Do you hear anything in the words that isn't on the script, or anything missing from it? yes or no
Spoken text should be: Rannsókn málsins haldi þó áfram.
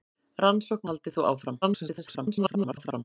yes